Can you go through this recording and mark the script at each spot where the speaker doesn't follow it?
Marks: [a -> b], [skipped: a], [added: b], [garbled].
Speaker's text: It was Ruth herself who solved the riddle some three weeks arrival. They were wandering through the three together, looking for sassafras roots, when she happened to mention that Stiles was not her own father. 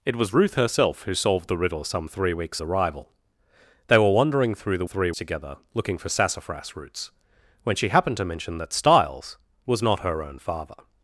It was Ruth herself who solved the riddle some three weeks arrival. They were wandering through the three together, looking for sassafras roots, when she happened to mention that Stiles was not her own father.